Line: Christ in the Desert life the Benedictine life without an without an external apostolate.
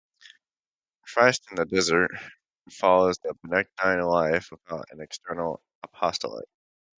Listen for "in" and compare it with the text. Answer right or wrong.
right